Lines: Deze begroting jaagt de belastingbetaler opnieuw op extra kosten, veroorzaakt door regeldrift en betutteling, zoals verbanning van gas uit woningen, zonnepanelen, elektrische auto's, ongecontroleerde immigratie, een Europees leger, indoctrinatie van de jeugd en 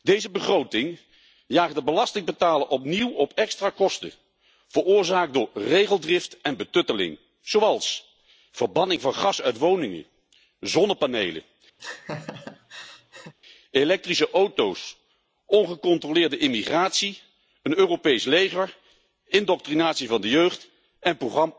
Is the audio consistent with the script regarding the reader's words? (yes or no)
yes